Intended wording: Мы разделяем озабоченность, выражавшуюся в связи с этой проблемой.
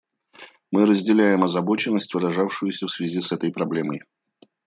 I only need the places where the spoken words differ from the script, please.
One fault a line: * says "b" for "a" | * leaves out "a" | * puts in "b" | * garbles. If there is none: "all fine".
all fine